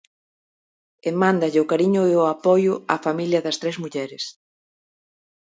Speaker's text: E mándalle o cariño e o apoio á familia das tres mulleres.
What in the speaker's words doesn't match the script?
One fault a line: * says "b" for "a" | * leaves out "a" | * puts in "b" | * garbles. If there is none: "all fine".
all fine